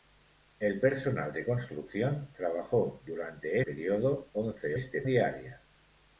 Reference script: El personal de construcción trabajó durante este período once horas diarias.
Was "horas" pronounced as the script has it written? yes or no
no